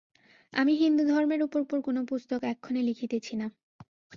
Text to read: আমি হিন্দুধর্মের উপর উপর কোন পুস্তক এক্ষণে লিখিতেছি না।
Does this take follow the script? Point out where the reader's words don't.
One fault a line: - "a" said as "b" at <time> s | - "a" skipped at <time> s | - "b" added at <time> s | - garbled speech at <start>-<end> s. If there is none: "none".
none